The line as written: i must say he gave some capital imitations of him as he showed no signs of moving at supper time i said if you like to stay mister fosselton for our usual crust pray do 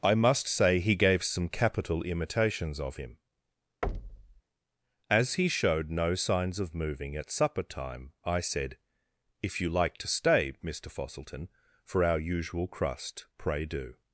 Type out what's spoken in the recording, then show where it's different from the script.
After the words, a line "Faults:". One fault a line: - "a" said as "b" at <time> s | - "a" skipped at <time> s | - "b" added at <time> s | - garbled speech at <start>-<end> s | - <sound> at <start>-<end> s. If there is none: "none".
i must say he gave some capital imitations of him as he showed no signs of moving at supper time i said if you like to stay mister fosselton for our usual crust pray do
Faults:
- thud at 3.8-4.4 s